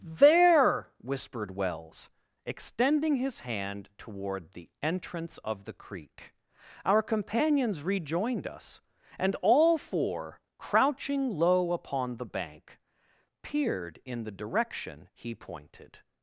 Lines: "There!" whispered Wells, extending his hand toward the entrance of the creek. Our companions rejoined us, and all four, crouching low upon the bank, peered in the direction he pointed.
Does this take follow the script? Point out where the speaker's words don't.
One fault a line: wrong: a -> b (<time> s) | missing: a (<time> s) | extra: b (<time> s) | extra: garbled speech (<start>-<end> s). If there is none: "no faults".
no faults